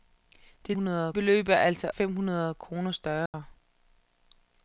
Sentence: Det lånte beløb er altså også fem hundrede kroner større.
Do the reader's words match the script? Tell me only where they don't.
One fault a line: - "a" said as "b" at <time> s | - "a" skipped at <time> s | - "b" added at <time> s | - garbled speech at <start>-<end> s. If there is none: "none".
- "lånte" said as "hundrede" at 0.7 s
- "også" skipped at 1.9 s